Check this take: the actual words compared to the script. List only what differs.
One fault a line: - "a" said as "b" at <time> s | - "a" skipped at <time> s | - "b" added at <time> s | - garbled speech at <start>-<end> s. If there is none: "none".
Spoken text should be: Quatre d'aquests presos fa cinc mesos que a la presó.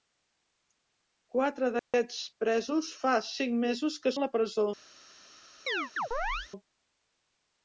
none